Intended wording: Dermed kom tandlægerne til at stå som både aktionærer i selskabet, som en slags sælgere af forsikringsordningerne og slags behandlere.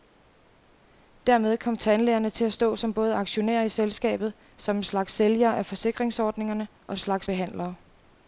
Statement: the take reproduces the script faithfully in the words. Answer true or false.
true